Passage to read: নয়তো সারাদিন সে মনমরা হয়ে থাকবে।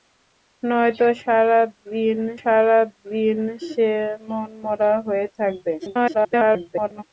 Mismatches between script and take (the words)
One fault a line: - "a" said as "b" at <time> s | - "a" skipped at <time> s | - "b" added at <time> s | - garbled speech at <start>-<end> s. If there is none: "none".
- "সারাদিন" added at 2.4 s
- garbled speech at 5.8-7.0 s